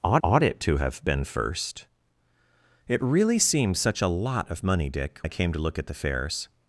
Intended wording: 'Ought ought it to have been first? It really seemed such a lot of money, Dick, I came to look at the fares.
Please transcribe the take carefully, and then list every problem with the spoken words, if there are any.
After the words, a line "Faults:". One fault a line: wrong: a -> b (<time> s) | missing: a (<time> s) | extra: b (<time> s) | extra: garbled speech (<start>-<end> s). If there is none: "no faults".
'Ought ought it to have been first? It really seemed such a lot of money, Dick, I came to look at the fares.
Faults:
no faults